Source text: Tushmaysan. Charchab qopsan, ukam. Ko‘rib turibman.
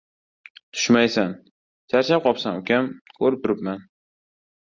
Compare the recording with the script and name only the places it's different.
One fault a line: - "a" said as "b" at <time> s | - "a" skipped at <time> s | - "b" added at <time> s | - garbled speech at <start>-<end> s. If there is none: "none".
none